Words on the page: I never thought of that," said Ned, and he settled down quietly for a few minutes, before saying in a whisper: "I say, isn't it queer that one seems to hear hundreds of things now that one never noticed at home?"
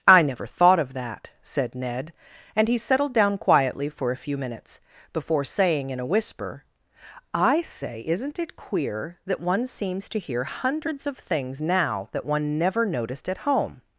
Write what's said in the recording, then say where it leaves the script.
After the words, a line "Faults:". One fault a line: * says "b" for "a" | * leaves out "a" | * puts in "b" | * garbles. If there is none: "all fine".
I never thought of that," said Ned, and he settled down quietly for a few minutes, before saying in a whisper: "I say, isn't it queer that one seems to hear hundreds of things now that one never noticed at home?"
Faults:
all fine